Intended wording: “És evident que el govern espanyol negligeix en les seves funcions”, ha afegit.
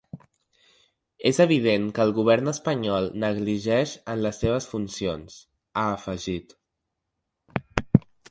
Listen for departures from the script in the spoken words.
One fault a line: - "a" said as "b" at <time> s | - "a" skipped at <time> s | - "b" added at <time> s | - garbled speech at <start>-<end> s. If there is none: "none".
none